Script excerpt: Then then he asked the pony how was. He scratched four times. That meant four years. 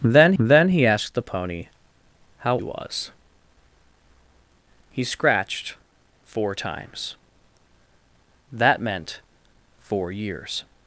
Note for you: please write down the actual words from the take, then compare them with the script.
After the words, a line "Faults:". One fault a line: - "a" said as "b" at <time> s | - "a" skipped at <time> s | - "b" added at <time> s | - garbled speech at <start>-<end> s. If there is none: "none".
Then then he asked the pony how was. He scratched four times. That meant four years.
Faults:
none